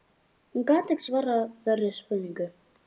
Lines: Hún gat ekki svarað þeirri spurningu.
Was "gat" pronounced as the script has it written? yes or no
yes